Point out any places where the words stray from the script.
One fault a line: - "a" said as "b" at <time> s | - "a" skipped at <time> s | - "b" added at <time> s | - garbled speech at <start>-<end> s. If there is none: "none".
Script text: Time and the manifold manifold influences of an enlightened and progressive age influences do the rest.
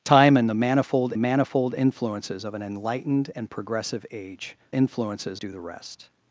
none